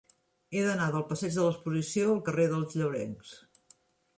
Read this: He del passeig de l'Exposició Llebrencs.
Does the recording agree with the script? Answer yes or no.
no